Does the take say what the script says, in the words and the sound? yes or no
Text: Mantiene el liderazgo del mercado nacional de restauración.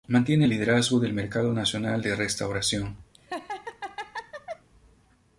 no